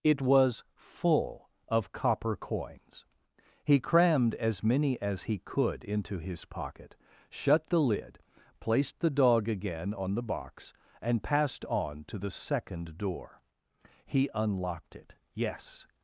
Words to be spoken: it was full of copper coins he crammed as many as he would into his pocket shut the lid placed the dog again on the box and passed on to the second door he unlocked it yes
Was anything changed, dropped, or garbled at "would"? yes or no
yes